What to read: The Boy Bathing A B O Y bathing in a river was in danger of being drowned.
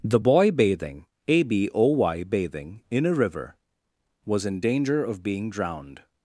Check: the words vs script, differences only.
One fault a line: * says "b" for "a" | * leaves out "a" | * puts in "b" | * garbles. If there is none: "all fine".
all fine